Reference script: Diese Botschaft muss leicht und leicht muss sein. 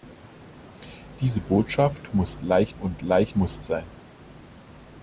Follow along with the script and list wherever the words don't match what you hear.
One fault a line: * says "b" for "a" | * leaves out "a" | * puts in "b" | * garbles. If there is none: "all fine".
all fine